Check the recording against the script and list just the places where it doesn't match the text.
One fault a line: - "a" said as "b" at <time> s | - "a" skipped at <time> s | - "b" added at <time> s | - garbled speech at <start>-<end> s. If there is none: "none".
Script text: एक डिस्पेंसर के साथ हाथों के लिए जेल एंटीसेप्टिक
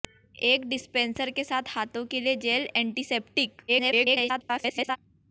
- garbled speech at 3.7-5.0 s